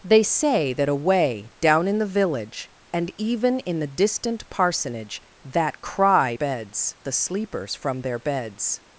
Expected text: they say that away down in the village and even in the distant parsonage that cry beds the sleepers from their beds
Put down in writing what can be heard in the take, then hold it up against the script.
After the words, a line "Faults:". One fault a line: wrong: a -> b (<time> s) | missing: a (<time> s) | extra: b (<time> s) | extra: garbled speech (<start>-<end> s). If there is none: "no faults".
they say that away down in the village and even in the distant parsonage that cry beds the sleepers from their beds
Faults:
no faults